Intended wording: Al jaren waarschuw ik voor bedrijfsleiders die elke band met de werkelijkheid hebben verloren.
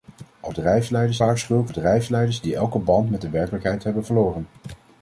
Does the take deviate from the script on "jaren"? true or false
true